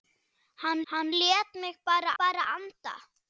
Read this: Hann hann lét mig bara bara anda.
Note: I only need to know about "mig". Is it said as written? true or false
true